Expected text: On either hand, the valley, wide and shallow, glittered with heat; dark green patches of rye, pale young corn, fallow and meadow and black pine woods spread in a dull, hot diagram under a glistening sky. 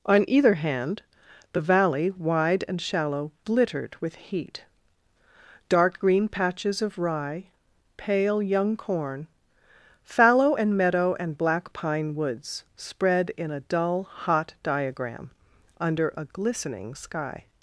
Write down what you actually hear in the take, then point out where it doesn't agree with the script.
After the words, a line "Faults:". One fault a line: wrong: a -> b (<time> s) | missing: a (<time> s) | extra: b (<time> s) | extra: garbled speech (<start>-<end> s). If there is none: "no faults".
On either hand, the valley, wide and shallow, glittered with heat; dark green patches of rye, pale young corn, fallow and meadow and black pine woods spread in a dull, hot diagram under a glistening sky.
Faults:
no faults